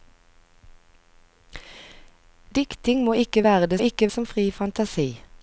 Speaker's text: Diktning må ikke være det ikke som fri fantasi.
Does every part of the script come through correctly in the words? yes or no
yes